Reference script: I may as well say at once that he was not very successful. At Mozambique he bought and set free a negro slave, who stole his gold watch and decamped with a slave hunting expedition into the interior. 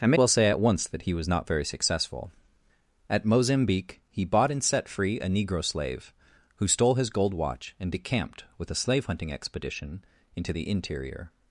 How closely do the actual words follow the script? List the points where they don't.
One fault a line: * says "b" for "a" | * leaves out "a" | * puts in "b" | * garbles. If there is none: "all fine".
* leaves out "as"